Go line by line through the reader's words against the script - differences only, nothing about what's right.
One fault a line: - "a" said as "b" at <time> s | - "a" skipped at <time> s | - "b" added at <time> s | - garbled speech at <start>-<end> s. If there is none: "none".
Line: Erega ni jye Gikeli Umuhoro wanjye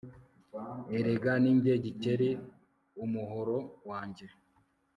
none